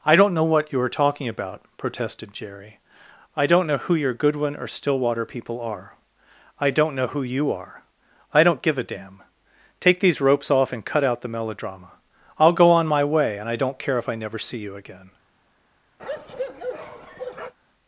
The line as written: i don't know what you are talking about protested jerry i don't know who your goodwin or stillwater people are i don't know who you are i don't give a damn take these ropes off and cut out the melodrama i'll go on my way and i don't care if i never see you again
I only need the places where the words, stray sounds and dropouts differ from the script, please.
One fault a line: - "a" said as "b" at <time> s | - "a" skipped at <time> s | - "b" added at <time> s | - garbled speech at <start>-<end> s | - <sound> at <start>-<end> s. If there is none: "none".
- bark at 16.0-17.5 s